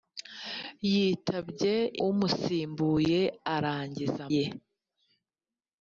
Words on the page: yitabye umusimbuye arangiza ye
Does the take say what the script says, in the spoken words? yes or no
yes